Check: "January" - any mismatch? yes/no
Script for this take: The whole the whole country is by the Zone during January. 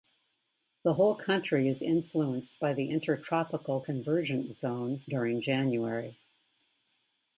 no